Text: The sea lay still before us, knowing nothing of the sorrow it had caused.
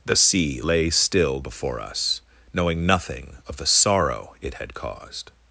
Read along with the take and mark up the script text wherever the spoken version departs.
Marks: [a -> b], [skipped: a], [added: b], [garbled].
The sea lay still before us, knowing nothing of the sorrow it had caused.